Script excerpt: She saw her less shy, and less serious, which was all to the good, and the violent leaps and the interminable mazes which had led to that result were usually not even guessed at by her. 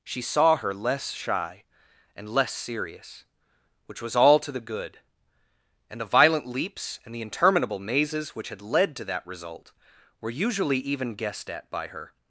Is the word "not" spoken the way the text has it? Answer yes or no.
no